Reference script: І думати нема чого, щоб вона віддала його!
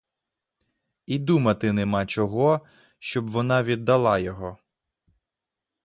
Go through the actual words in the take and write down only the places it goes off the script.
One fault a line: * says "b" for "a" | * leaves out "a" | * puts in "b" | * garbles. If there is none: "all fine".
all fine